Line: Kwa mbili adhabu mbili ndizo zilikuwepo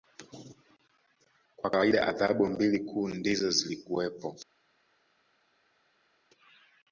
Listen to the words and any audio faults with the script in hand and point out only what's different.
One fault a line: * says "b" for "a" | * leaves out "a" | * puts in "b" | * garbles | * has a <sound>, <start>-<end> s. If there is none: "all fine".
* says "kawaida" for "mbili"
* puts in "kuu"